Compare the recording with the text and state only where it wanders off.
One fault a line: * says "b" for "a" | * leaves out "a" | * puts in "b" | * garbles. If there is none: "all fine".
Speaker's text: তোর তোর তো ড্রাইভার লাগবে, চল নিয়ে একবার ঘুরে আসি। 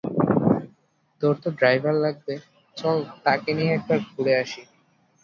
* leaves out "তোর"
* puts in "তাকে"